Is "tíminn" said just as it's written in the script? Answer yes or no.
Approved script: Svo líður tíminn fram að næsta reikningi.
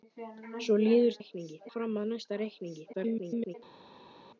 no